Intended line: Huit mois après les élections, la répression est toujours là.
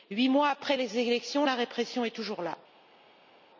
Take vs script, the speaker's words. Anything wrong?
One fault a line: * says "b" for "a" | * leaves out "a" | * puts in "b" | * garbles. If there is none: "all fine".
all fine